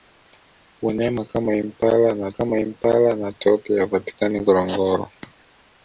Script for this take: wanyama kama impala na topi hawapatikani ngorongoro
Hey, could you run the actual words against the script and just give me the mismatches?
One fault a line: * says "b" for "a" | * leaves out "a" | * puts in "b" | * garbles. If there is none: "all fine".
* puts in "kama impala na"